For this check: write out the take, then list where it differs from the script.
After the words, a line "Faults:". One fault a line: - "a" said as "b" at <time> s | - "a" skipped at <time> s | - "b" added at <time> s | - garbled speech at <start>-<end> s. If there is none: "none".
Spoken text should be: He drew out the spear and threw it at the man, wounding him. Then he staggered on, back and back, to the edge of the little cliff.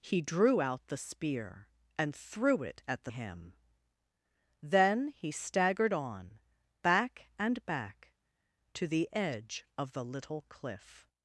He drew out the spear and threw it at the him. Then he staggered on, back and back, to the edge of the little cliff.
Faults:
- "man wounding" skipped at 3.1 s